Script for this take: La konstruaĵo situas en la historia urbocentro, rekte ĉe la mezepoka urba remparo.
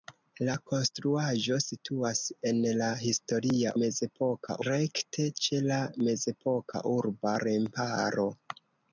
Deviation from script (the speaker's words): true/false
true